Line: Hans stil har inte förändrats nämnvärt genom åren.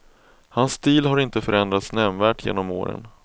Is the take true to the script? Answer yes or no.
yes